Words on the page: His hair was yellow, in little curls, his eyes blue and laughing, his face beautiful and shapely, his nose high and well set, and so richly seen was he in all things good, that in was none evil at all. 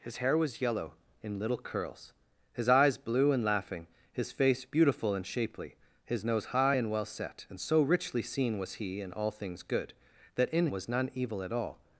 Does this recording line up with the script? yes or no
yes